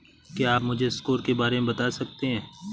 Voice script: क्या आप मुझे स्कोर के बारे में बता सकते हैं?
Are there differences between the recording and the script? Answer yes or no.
no